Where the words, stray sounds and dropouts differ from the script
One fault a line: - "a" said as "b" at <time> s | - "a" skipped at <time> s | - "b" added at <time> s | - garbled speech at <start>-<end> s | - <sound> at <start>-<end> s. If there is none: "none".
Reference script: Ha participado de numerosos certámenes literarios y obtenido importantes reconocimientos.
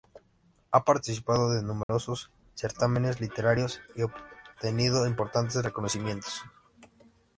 - dropout at 1.8-1.9 s